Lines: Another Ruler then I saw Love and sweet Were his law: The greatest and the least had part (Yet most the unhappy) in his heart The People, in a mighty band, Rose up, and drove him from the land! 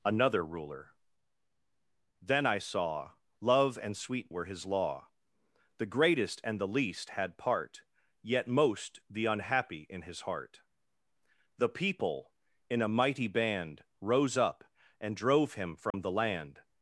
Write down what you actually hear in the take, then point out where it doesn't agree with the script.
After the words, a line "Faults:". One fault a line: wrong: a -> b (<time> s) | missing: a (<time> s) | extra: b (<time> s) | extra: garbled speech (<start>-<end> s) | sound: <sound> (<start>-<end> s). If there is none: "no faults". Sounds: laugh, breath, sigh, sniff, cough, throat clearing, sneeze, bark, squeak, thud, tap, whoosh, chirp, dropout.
Another Ruler then I saw Love and sweet Were his law: The greatest and the least had part (Yet most the unhappy) in his heart The People, in a mighty band, Rose up, and drove him from the land!
Faults:
sound: dropout (15.9-15.9 s)